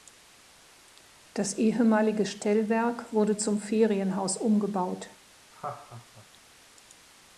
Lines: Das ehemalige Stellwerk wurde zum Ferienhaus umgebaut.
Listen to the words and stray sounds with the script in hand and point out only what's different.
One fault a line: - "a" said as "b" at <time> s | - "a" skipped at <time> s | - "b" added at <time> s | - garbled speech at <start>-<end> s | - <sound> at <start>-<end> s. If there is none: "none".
- laugh at 5.5-6.3 s